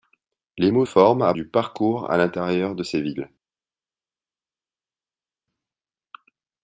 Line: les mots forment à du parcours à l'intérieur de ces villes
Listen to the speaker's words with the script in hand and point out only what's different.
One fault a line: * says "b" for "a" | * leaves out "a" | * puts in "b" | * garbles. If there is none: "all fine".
all fine